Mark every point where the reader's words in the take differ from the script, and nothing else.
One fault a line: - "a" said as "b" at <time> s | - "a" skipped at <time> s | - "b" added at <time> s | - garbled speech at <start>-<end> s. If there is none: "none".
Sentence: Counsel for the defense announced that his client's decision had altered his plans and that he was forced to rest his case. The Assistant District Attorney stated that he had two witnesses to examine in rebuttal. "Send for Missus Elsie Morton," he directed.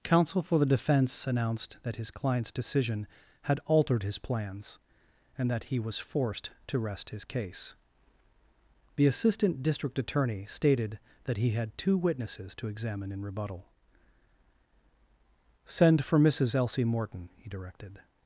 none